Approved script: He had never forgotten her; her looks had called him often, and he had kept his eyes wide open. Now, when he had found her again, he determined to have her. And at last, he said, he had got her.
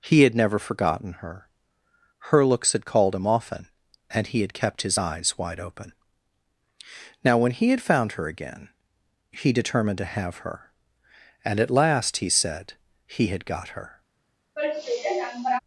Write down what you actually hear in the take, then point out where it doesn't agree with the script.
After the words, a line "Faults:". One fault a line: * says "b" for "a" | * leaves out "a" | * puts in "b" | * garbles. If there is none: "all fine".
He had never forgotten her; her looks had called him often, and he had kept his eyes wide open. Now, when he had found her again, he determined to have her. And at last, he said, he had got her.
Faults:
all fine